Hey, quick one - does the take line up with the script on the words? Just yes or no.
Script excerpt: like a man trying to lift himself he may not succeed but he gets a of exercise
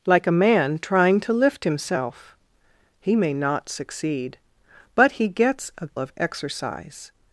yes